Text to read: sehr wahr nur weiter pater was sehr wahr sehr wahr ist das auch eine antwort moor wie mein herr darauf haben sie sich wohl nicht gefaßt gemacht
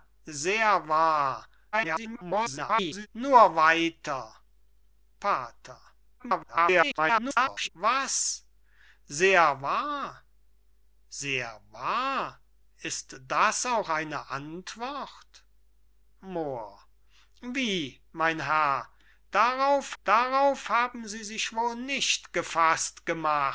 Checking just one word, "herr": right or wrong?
right